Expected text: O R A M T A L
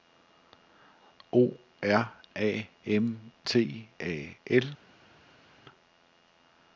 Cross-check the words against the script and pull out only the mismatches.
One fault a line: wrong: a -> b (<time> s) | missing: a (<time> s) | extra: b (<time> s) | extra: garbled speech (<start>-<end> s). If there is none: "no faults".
no faults